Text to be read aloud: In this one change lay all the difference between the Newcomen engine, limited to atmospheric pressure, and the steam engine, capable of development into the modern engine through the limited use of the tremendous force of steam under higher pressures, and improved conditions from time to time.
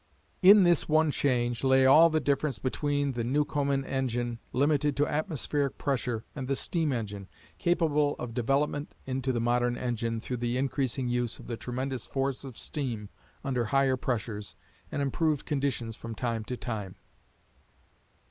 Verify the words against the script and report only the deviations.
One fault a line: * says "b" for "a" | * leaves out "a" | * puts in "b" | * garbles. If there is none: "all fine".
* says "increasing" for "limited"